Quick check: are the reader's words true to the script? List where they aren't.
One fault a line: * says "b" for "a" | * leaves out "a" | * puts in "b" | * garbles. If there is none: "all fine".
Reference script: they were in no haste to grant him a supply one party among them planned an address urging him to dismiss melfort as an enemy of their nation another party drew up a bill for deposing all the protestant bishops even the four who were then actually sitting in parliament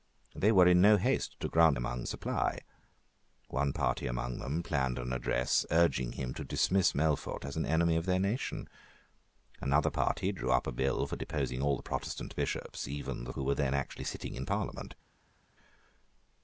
* says "among" for "him"
* leaves out "four"